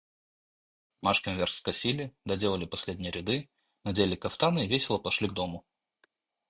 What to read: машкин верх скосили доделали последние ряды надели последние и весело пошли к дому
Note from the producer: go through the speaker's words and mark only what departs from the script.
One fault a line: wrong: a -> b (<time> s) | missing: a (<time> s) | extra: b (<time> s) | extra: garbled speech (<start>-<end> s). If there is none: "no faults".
wrong: последние -> кафтаны (4.2 s)